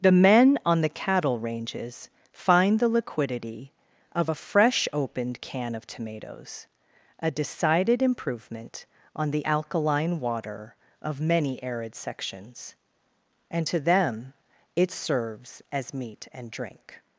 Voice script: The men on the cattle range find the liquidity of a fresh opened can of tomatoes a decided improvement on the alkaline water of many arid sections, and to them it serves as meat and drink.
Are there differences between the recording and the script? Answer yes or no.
yes